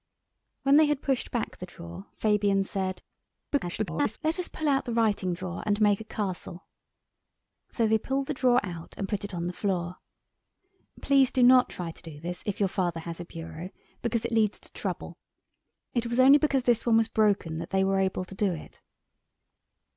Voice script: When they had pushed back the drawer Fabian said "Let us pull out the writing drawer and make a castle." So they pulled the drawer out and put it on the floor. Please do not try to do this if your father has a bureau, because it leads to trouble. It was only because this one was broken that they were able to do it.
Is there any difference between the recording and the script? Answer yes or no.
yes